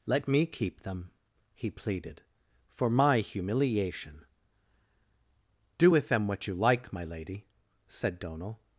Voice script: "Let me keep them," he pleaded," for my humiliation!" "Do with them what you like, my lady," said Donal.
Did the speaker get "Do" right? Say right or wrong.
right